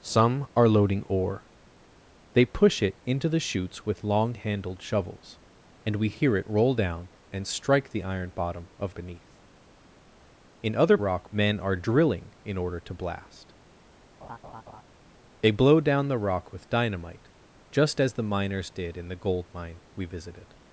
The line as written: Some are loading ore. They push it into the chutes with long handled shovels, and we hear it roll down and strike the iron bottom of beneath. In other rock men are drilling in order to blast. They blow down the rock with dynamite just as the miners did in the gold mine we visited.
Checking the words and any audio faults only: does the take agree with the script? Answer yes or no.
no